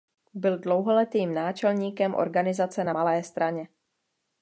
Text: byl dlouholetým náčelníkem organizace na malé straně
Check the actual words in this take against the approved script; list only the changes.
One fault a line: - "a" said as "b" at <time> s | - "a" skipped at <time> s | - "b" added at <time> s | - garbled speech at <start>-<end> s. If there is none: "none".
none